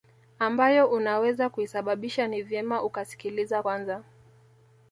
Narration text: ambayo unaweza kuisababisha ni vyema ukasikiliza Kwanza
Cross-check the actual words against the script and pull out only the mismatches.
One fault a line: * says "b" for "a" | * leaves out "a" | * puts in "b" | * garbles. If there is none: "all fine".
all fine